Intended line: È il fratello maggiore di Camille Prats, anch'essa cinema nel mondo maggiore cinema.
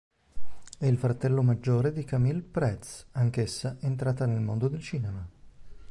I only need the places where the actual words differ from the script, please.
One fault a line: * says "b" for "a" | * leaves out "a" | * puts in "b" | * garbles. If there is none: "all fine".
* says "entrata" for "cinema"
* says "del" for "maggiore"